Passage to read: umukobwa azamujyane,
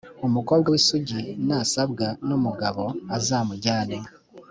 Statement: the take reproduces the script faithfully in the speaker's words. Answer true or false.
false